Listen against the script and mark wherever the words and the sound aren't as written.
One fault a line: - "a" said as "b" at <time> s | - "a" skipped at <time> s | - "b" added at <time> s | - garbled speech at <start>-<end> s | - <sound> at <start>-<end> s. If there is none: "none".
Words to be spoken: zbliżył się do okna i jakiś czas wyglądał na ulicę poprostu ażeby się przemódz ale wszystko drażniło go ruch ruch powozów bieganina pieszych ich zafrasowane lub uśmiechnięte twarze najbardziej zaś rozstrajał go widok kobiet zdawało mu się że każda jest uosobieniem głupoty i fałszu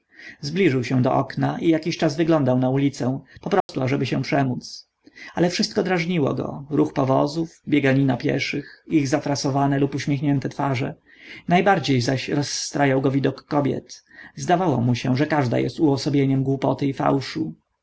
- dropout at 3.6-3.7 s
- "ruch" skipped at 6.9 s